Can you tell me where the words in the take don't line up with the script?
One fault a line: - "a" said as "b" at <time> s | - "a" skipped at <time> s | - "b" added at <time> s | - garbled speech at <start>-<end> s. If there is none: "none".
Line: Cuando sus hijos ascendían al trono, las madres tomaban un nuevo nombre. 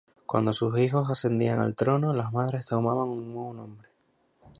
none